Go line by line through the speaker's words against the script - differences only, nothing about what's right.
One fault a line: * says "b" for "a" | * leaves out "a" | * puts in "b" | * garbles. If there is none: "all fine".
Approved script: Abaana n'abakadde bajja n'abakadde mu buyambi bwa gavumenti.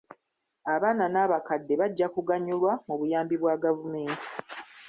* says "kuganyulwa" for "n'abakadde"